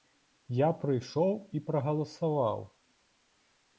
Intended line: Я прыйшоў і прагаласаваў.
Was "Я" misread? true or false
false